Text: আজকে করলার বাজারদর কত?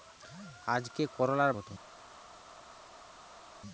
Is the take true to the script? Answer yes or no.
no